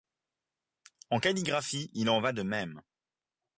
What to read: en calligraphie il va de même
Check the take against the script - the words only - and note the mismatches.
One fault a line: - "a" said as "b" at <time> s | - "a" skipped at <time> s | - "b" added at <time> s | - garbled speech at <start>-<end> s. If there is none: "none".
- "en" added at 2.1 s